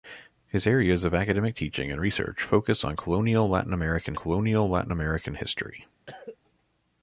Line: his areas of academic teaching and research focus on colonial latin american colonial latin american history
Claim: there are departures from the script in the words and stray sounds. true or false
true